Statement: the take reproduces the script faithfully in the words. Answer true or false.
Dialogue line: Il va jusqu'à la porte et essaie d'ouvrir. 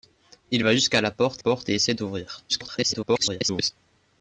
false